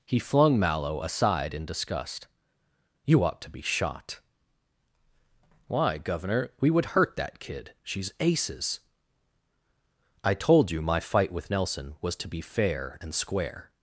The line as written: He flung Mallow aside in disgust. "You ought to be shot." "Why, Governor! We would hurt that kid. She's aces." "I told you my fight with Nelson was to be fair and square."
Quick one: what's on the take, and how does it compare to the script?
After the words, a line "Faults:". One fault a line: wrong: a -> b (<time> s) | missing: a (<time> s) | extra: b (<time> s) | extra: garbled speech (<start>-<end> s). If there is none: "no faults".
He flung Mallow aside in disgust. "You ought to be shot." "Why, Governor! We would hurt that kid. She's aces." "I told you my fight with Nelson was to be fair and square."
Faults:
no faults